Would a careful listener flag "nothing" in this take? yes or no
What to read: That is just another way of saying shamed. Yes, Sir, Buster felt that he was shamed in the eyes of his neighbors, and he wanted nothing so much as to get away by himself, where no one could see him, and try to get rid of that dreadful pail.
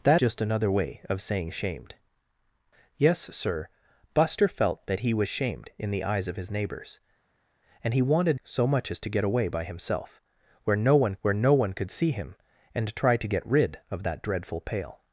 yes